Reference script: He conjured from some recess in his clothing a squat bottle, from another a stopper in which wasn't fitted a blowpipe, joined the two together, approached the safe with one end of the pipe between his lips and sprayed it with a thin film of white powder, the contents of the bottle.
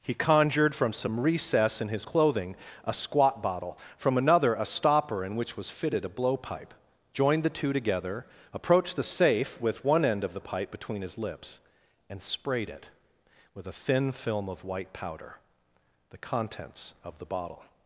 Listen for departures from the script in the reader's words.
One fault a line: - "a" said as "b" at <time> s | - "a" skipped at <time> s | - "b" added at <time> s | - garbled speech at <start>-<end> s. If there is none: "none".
- "wasn't" said as "was" at 5.6 s